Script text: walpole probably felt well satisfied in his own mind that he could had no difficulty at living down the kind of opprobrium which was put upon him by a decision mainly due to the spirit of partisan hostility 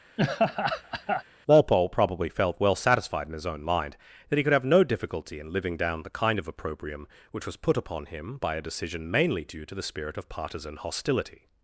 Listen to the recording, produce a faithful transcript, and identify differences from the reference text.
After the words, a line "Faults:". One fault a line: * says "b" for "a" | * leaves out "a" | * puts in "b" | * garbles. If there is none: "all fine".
walpole probably felt well satisfied in his own mind that he could have no difficulty in living down the kind of opprobrium which was put upon him by a decision mainly due to the spirit of partisan hostility
Faults:
* says "have" for "had"
* says "in" for "at"